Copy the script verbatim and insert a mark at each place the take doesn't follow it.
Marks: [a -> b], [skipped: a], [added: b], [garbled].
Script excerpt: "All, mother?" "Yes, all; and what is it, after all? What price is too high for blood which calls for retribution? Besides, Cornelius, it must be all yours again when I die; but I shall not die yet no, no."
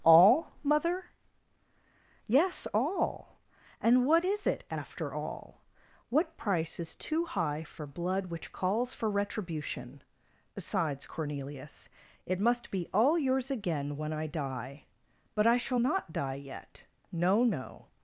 "All, mother?" "Yes, all; and what is it, after all? What price is too high for blood which calls for retribution? Besides, Cornelius, it must be all yours again when I die; but I shall not die yet no, no."